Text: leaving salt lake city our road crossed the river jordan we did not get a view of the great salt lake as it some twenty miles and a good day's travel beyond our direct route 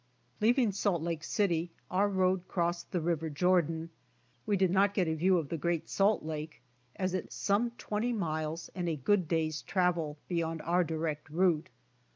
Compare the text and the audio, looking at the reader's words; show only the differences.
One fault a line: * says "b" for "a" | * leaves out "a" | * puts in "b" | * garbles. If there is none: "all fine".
all fine